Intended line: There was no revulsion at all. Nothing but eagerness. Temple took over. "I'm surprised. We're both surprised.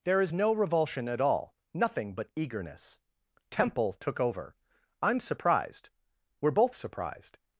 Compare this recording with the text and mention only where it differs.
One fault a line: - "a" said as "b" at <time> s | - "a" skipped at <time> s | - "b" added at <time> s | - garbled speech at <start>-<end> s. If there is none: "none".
- "was" said as "is" at 0.2 s